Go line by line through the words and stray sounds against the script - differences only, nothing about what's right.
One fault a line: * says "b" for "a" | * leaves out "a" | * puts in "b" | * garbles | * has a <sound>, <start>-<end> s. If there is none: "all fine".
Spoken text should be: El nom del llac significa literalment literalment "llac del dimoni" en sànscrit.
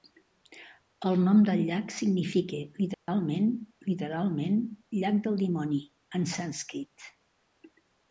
* has a dropout, 2.9-3.1 s